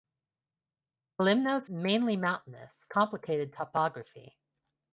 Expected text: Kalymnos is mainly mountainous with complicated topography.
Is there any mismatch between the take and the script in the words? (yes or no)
yes